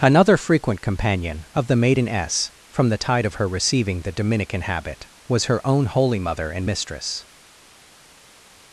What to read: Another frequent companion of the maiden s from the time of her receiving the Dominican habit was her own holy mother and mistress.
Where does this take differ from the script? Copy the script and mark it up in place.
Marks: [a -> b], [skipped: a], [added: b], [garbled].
Another frequent companion of the maiden s from the [time -> tide] of her receiving the Dominican habit was her own holy mother and mistress.